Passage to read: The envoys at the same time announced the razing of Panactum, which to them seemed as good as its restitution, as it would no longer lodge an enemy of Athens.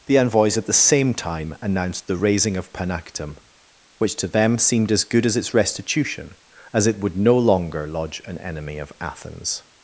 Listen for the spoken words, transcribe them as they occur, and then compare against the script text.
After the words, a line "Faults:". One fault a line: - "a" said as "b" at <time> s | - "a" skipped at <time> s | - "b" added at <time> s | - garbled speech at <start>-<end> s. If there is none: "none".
The envoys at the same time announced the razing of Panactum, which to them seemed as good as its restitution, as it would no longer lodge an enemy of Athens.
Faults:
none